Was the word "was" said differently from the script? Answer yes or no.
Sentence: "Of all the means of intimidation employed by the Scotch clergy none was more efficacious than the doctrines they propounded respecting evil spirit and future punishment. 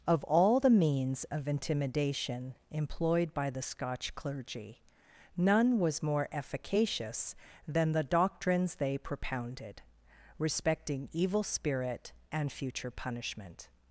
no